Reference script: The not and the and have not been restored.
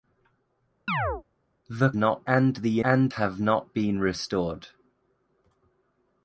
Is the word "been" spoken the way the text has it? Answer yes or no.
yes